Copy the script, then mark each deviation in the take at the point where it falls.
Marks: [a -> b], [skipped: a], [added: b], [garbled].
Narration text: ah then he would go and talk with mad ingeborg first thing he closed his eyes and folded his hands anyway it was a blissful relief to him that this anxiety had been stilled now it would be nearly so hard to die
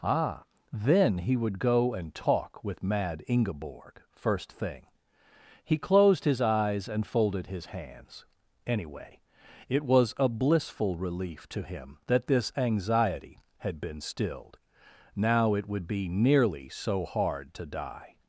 ah then he would go and talk with mad ingeborg first thing he closed his eyes and folded his hands anyway it was a blissful relief to him that this anxiety had been stilled now it would be nearly so hard to die